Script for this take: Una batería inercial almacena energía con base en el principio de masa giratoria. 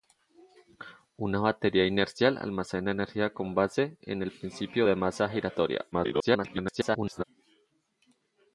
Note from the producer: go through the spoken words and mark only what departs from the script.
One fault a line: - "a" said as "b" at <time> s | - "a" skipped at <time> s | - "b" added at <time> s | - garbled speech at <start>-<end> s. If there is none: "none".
- garbled speech at 5.9-7.2 s